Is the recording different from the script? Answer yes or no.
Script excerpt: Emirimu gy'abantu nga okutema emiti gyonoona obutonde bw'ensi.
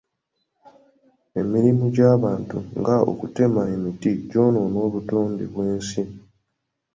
no